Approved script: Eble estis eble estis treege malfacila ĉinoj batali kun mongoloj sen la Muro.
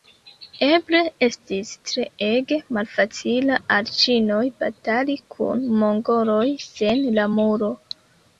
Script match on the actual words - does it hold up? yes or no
no